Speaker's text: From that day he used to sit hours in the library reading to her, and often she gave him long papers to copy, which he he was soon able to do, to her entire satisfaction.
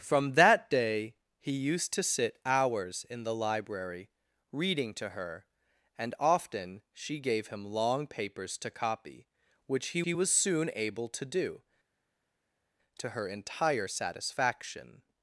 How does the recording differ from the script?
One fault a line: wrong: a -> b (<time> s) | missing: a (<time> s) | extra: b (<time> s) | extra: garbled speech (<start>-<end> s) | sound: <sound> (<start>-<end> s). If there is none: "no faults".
no faults